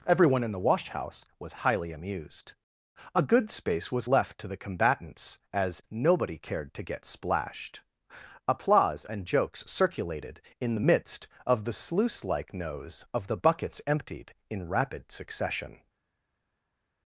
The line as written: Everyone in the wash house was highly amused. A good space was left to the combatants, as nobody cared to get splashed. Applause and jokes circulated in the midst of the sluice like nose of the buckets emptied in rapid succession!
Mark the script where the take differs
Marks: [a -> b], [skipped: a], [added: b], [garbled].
Everyone in the wash house was highly amused. A good space was left to the combatants, as nobody cared to get splashed. Applause and jokes circulated in the midst of the sluice like nose of the buckets emptied in rapid succession!